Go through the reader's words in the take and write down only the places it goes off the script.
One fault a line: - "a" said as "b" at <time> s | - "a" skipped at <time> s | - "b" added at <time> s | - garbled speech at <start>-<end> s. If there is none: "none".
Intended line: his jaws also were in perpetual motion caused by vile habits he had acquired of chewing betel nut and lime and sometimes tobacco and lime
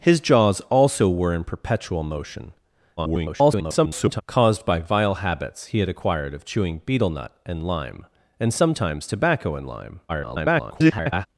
- garbled speech at 3.0-4.2 s
- garbled speech at 10.1-11.3 s